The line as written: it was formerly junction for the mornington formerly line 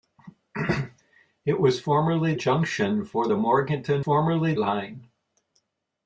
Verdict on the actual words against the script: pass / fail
pass